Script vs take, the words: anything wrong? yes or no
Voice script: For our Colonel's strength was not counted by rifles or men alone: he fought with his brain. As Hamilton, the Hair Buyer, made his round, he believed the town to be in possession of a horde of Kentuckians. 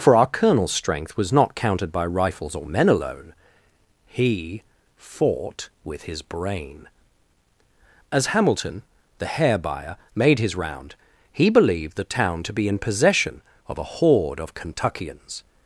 no